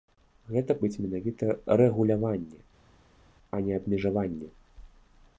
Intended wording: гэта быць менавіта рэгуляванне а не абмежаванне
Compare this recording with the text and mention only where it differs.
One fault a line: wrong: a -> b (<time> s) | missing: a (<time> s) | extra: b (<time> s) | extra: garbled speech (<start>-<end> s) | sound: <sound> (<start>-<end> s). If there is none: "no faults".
no faults